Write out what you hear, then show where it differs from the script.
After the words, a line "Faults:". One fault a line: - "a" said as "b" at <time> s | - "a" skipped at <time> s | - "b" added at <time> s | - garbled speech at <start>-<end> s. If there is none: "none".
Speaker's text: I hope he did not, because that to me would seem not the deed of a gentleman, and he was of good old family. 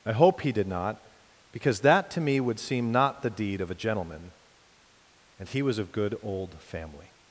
I hope he did not, because that to me would seem not the deed of a gentleman, and he was of good old family.
Faults:
none